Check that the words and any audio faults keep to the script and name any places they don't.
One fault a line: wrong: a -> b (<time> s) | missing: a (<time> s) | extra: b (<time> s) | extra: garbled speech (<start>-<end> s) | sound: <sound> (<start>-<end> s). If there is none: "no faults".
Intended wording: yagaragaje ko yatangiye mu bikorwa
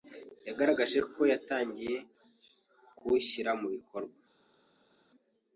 extra: kuwushyira (3.0 s)